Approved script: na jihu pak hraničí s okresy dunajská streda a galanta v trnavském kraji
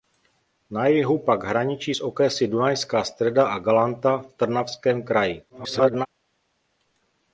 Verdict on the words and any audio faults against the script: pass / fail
fail